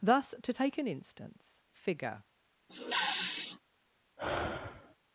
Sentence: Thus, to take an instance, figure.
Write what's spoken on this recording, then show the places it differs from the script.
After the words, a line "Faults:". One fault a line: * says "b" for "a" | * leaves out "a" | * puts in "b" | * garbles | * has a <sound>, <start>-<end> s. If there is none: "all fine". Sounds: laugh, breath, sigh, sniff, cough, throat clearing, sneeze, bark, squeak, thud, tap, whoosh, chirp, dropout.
Thus, to take an instance, figure.
Faults:
* has a sniff, 2.7-3.6 s
* has a sigh, 4.2-5.0 s